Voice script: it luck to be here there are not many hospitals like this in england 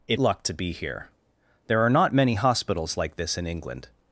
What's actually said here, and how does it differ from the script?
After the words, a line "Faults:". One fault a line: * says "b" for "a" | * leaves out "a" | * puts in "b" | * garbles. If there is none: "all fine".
it luck to be here there are not many hospitals like this in england
Faults:
all fine